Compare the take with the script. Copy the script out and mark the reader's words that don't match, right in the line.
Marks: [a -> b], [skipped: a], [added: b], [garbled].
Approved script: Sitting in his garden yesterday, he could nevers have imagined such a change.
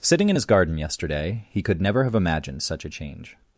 Sitting in his garden yesterday, he could [nevers -> never] have imagined such a change.